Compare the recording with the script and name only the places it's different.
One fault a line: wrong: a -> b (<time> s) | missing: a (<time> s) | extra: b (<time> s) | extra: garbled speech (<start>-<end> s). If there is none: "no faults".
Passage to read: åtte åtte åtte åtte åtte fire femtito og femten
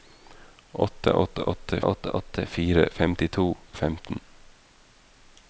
no faults